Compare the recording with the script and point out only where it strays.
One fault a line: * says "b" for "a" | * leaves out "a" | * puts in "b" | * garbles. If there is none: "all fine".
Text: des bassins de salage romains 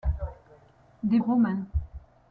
* leaves out "bassins de salage"